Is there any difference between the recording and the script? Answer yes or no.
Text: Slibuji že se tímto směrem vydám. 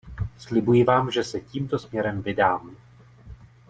yes